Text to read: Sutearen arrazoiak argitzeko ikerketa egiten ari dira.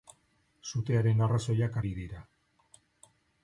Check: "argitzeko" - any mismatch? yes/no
yes